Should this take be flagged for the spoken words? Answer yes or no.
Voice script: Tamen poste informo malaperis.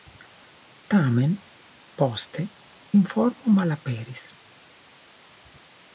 no